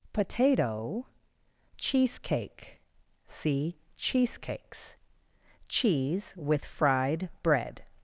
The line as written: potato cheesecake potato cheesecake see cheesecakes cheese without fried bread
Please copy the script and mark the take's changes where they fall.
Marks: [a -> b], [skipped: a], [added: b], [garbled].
potato cheesecake [skipped: potato cheesecake] see cheesecakes cheese [without -> with] fried bread